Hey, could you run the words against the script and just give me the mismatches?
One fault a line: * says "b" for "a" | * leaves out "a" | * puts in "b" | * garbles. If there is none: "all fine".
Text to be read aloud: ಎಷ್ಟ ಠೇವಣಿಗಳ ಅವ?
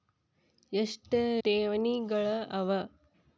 all fine